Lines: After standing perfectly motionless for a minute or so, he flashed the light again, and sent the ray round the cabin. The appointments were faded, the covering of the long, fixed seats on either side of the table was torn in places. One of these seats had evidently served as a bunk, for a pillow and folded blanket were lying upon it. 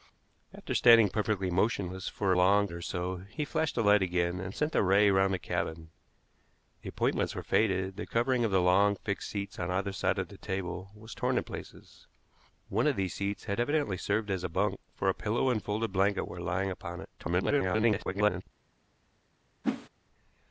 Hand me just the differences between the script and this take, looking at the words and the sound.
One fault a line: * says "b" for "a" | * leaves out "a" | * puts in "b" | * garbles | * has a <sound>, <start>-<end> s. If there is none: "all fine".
* says "long" for "minute"
* garbles
* has a whoosh, 19.6-19.9 s